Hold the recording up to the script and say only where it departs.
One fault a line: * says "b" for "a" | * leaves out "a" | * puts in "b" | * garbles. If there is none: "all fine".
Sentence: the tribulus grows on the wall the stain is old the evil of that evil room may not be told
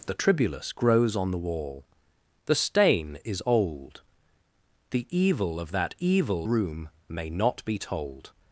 all fine